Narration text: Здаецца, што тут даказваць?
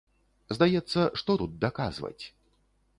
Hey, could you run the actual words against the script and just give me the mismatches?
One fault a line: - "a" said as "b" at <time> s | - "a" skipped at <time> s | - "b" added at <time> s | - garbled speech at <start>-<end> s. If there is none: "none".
none